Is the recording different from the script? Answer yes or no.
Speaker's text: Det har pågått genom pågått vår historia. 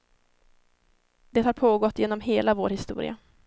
yes